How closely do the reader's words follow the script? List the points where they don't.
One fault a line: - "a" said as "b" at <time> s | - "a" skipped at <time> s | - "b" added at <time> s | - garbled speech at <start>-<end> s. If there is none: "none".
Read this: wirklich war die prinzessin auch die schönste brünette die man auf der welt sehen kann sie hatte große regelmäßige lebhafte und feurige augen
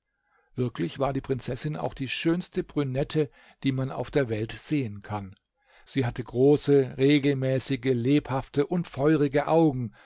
none